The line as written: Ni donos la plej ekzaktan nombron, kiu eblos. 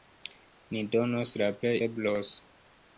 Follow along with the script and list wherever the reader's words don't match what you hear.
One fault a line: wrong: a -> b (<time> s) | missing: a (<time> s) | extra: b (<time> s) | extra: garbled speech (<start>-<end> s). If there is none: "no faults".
missing: ekzaktan nombron kiu (1.7 s)